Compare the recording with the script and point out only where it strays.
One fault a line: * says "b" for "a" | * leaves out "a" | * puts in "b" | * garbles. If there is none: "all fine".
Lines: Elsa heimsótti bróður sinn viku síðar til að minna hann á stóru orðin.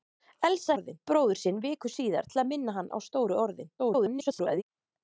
* says "orðin" for "heimsótti"
* garbles